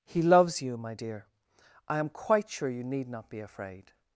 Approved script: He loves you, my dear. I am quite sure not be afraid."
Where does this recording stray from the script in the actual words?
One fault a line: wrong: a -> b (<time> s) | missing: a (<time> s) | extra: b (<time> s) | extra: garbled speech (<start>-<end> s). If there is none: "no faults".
extra: you need (2.7 s)